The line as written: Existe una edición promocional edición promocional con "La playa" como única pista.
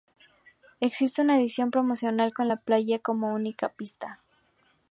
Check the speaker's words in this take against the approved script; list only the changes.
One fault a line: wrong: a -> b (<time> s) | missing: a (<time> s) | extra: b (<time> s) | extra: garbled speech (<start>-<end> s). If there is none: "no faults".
missing: edición promocional (2.3 s)